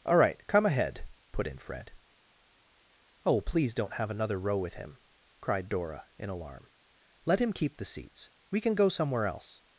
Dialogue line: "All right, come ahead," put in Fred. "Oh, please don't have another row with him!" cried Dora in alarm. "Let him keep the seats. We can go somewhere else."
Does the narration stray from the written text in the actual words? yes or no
no